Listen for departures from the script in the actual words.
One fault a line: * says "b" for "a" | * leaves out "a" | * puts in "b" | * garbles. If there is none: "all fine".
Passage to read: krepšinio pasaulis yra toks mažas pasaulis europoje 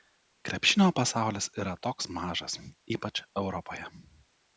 * says "ypač" for "pasaulis"